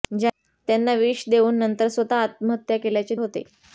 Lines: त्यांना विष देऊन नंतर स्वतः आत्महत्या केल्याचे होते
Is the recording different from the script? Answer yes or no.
no